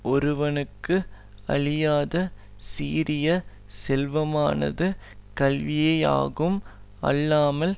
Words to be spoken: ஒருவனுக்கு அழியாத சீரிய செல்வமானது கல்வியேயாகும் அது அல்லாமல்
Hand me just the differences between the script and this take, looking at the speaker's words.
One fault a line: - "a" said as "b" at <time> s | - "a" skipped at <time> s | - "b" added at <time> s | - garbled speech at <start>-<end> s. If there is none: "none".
- "அது" skipped at 6.6 s